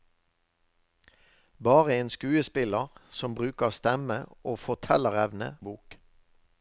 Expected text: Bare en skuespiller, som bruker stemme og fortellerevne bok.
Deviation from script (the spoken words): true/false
false